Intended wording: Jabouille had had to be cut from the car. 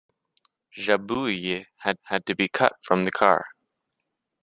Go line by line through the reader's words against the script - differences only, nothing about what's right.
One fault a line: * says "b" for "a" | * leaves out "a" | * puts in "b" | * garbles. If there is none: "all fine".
all fine